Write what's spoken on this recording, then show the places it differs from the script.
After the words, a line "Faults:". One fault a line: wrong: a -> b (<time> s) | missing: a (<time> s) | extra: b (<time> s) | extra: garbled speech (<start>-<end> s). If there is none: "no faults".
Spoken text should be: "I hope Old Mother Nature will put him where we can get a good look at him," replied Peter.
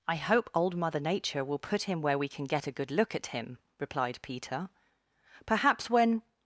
"I hope Old Mother Nature will put him where we can get a good look at him," replied Peter. "Perhaps when
Faults:
extra: Perhaps when (5.5 s)